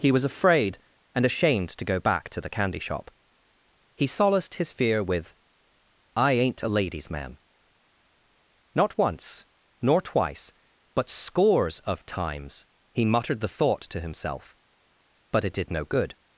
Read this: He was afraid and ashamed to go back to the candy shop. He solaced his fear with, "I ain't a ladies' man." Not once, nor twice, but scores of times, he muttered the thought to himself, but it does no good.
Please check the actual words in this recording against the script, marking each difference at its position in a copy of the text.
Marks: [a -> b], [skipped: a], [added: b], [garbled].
He was afraid and ashamed to go back to the candy shop. He solaced his fear with, "I ain't a ladies' man." Not once, nor twice, but scores of times, he muttered the thought to himself, but it [does -> did] no good.